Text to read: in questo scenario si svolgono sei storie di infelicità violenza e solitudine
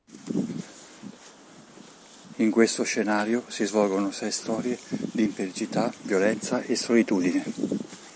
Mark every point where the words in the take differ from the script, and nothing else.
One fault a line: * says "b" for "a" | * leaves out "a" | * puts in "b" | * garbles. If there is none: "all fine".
all fine